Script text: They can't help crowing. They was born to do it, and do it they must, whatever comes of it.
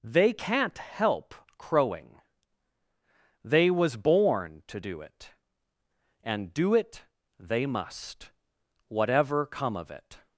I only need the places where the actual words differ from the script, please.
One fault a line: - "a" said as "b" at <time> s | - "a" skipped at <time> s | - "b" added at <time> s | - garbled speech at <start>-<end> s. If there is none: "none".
- "comes" said as "come" at 9.4 s